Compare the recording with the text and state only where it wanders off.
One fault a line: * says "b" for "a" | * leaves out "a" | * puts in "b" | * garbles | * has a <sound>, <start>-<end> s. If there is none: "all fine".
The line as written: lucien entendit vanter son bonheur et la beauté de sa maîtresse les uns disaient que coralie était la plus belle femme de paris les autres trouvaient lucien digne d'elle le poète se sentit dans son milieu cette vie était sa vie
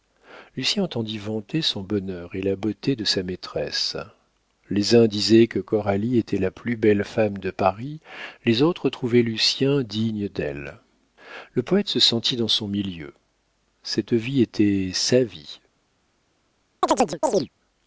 * has a chirp, 16.8-17.5 s